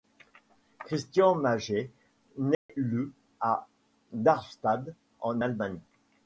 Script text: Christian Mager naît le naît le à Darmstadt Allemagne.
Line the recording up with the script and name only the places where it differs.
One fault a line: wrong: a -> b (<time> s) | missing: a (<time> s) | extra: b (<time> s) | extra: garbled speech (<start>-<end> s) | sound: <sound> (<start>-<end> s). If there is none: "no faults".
sound: dropout (2.5-2.7 s)
missing: naît le (3.1 s)
extra: en (5.2 s)